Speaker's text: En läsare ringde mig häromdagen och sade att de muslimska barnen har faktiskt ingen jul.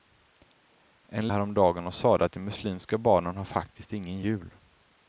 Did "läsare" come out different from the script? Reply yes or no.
yes